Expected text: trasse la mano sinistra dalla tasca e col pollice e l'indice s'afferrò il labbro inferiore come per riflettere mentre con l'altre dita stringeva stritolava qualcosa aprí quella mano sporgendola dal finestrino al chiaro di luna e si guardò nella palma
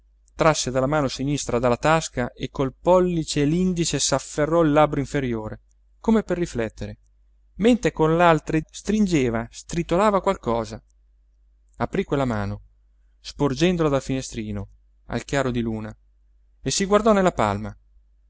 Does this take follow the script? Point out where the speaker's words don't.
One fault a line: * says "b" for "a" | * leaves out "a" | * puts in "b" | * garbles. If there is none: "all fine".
* leaves out "dita"